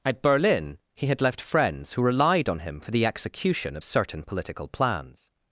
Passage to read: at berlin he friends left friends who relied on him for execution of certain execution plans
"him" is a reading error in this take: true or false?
false